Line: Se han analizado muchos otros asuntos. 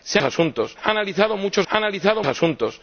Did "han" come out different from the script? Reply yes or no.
yes